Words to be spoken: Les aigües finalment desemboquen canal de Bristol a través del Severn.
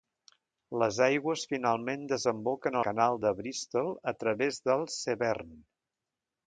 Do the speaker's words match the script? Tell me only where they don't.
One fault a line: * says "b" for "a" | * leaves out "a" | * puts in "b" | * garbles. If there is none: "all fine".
all fine